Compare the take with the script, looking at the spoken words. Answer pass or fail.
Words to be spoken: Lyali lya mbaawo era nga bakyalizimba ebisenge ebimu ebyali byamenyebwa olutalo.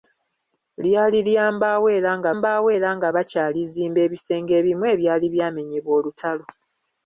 fail